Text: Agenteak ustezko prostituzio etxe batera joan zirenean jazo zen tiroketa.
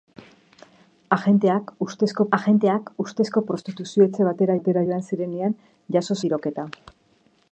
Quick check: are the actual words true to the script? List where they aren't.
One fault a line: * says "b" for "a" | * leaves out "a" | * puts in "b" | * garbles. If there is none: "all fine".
* puts in "agenteak ustezko"
* puts in "batera"
* leaves out "zen"